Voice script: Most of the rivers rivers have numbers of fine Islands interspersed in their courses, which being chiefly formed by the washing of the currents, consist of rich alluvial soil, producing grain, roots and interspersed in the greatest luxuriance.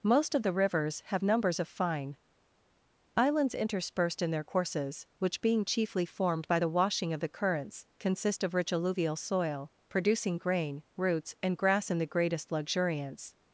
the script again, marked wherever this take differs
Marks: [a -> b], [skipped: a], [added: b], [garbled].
Most of the rivers [skipped: rivers] have numbers of fine Islands interspersed in their courses, which being chiefly formed by the washing of the currents, consist of rich alluvial soil, producing grain, roots and [interspersed -> grass] in the greatest luxuriance.